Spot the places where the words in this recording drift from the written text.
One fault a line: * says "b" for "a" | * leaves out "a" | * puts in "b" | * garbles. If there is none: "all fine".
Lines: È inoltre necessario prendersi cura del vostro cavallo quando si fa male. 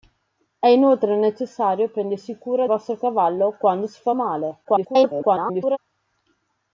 * leaves out "del"
* garbles